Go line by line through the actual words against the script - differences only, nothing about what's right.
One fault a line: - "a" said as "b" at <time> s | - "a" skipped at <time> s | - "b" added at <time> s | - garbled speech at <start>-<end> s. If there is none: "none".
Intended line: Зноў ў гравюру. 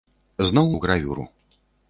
none